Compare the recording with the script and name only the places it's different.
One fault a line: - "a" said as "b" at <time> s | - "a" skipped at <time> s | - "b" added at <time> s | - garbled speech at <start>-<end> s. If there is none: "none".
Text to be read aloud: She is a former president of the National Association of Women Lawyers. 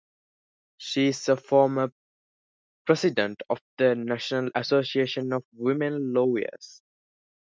none